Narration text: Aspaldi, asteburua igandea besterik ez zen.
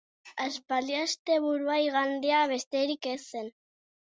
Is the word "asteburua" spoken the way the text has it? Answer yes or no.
yes